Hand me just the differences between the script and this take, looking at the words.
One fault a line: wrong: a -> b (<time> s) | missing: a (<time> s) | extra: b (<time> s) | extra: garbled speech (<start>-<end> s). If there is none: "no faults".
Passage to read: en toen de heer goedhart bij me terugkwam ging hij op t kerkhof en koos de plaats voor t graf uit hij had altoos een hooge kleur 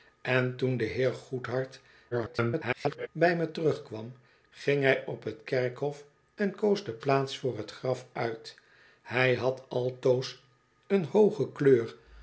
extra: garbled speech (2.1-3.1 s)